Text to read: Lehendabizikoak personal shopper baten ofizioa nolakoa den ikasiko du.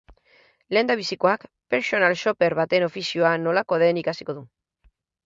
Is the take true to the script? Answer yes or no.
yes